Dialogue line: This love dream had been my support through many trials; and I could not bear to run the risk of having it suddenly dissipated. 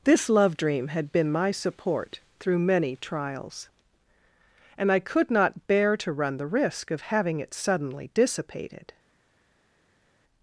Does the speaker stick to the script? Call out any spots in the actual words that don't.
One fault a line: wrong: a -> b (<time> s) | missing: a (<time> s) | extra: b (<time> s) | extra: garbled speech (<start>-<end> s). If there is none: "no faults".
no faults